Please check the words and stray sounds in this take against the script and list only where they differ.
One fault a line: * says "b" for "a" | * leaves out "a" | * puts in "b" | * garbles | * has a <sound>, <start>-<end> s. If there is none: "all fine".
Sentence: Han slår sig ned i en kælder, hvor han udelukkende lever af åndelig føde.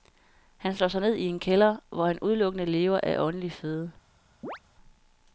* has a chirp, 4.4-4.6 s